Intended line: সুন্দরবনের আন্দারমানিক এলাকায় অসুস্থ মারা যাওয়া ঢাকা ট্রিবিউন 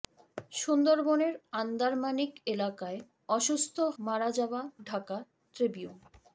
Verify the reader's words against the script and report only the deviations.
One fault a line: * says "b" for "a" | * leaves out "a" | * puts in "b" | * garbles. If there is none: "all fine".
all fine